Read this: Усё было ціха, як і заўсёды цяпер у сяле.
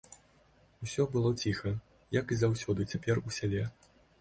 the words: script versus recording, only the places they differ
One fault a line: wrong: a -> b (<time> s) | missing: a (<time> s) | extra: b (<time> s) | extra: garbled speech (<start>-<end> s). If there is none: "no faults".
no faults